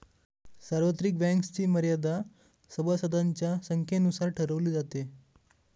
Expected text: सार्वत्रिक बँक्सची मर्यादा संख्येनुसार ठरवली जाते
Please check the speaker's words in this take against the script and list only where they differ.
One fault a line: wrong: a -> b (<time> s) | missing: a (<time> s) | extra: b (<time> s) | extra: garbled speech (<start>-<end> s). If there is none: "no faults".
extra: सभासदांच्या (2.7 s)